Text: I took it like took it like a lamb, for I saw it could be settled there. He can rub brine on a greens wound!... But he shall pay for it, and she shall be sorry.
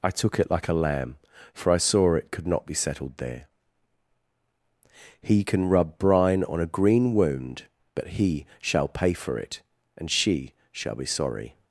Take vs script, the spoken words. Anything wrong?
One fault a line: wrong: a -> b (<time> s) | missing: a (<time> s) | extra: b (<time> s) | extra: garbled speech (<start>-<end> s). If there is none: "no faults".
missing: took it like (0.7 s)
extra: not (2.5 s)
wrong: greens -> green (6.7 s)